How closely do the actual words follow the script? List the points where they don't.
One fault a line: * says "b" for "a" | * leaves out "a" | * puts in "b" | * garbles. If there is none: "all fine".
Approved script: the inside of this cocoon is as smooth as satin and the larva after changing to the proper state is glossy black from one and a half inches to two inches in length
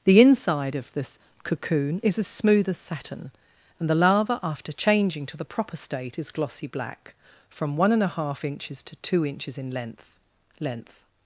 * puts in "length"